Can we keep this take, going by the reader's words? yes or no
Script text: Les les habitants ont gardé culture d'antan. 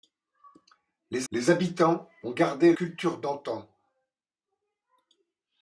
yes